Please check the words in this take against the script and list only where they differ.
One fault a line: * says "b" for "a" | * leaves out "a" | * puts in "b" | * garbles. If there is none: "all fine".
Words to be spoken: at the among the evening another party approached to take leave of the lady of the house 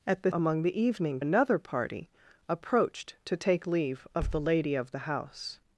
all fine